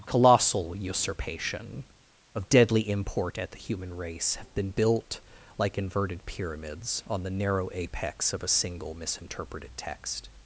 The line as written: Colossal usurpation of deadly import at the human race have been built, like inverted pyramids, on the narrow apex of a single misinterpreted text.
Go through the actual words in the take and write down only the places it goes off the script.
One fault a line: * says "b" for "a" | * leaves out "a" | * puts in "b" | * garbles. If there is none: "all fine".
all fine